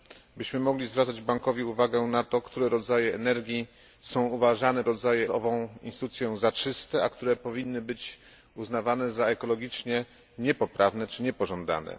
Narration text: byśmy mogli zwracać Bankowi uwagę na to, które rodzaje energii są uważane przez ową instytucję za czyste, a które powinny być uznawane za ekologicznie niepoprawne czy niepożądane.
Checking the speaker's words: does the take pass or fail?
fail